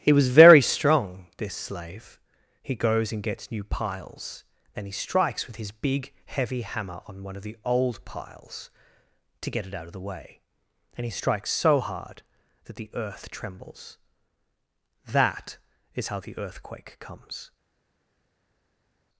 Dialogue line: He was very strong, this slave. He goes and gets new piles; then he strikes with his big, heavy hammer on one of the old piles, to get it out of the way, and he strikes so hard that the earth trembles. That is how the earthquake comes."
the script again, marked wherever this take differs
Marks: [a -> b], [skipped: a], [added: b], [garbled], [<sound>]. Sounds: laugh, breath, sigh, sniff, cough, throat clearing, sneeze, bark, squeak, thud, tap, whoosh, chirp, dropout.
He was very strong, this slave. He goes and gets new piles; then he strikes with his big, heavy hammer on one of the old piles, to get it out of the way, and he strikes so hard that the earth trembles. That is how the earthquake comes."